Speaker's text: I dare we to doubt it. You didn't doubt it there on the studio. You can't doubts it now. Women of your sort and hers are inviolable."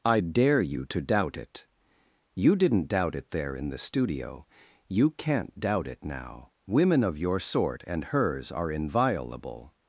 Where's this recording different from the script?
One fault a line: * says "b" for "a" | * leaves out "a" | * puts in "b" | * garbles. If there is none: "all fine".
* says "you" for "we"
* says "in" for "on"
* says "doubt" for "doubts"